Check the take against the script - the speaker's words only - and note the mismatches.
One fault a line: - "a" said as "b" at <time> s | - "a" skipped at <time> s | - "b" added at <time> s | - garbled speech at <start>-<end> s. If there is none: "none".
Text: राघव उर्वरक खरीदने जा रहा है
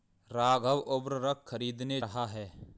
- "जा" skipped at 2.0 s